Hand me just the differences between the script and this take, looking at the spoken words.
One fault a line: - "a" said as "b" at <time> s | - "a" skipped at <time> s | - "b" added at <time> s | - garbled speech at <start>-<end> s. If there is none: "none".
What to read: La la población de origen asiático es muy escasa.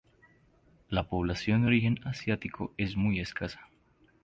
- "la" skipped at 1.1 s